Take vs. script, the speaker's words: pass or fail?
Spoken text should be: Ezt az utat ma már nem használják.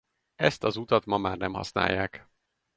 pass